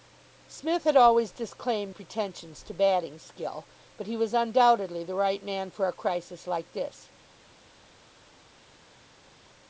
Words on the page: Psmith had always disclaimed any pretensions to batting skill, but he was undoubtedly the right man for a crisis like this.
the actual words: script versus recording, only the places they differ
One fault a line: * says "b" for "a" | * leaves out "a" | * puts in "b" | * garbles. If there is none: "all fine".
* leaves out "any"